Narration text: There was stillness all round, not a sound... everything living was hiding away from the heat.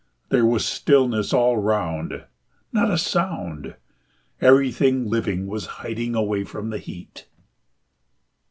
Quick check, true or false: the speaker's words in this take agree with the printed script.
true